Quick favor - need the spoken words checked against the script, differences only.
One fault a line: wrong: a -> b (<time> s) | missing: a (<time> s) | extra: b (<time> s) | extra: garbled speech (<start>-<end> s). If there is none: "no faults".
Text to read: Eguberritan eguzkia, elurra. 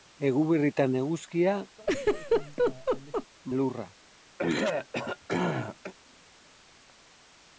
no faults